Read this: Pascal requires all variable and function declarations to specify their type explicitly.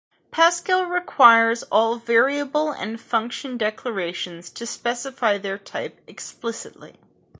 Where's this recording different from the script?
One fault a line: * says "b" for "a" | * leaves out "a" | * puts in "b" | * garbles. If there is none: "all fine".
all fine